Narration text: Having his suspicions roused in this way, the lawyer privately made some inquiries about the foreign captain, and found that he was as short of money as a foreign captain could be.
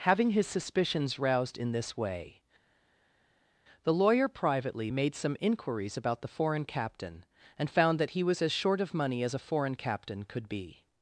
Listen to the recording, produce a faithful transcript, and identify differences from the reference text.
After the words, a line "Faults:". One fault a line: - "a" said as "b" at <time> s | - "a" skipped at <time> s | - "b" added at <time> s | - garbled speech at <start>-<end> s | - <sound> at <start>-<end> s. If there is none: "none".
Having his suspicions roused in this way, the lawyer privately made some inquiries about the foreign captain, and found that he was as short of money as a foreign captain could be.
Faults:
none